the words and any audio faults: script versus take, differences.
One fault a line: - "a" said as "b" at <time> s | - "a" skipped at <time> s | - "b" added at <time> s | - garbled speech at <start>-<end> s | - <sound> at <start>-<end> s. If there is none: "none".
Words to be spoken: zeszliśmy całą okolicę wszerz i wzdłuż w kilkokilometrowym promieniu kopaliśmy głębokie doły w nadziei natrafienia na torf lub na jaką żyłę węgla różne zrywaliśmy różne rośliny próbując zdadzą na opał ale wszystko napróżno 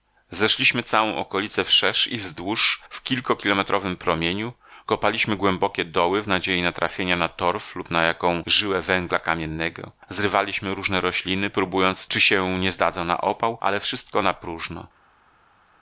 - "różne" said as "kamiennego" at 9.2 s
- "czy się nie" added at 12.1 s